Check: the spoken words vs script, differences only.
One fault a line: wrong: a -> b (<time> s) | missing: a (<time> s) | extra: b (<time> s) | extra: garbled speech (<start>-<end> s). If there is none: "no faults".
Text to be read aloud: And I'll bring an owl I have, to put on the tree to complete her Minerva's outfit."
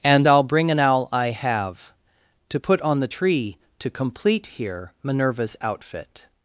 wrong: her -> here (4.5 s)